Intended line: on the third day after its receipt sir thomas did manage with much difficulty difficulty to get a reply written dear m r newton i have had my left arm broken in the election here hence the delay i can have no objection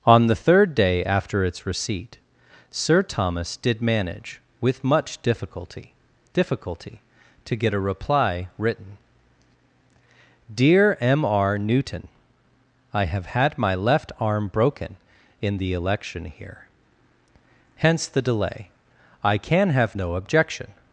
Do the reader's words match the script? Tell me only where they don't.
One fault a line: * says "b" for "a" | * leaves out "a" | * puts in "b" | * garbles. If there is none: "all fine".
all fine